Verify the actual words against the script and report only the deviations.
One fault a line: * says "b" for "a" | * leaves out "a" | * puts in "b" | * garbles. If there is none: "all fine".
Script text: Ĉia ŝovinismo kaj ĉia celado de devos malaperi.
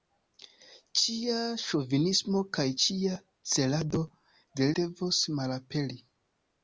all fine